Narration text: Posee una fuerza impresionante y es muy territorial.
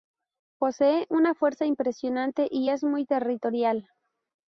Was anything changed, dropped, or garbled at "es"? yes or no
no